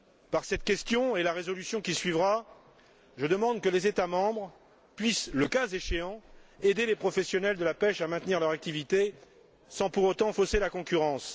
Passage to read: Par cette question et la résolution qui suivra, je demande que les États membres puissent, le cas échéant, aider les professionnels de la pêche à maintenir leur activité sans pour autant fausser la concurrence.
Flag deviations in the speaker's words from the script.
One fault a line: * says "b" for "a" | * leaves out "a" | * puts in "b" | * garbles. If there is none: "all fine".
all fine